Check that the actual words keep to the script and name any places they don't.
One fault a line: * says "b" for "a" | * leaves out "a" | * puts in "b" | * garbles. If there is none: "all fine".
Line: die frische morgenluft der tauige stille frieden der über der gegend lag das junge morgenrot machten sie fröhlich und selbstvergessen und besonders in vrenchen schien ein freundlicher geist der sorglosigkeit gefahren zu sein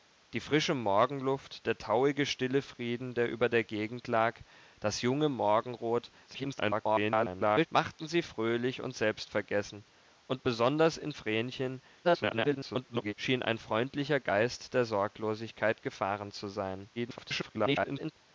* garbles
* garbles
* garbles